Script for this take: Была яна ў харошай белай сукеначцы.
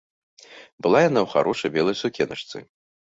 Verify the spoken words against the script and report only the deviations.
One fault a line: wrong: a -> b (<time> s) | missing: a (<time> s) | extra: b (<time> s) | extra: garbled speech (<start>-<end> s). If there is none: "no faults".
no faults